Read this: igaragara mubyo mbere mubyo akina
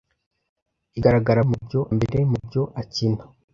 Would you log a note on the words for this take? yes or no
no